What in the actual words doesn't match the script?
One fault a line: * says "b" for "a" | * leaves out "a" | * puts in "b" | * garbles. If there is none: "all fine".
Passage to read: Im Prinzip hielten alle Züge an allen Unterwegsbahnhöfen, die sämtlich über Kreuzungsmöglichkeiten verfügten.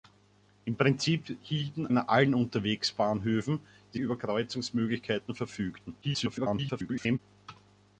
* leaves out "alle Züge"
* leaves out "sämtlich"
* garbles